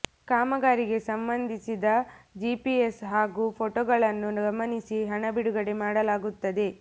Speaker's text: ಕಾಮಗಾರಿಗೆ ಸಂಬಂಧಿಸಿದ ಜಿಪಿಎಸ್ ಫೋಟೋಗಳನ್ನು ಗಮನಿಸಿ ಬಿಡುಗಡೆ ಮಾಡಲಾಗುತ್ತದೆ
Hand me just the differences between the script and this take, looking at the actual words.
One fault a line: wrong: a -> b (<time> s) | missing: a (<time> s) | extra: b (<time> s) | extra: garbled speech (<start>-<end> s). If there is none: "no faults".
extra: ಹಾಗೂ (3.0 s)
extra: ಹಣ (5.0 s)